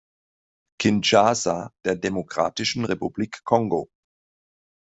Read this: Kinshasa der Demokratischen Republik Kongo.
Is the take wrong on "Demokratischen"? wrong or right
right